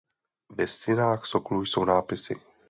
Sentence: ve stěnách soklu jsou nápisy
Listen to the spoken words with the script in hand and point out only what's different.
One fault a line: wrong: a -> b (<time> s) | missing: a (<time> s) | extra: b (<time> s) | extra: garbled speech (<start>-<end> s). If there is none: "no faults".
no faults